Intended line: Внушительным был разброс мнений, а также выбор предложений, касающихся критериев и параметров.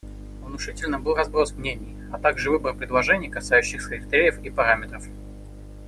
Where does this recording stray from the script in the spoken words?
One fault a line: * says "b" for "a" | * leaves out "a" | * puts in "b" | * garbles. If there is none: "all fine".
all fine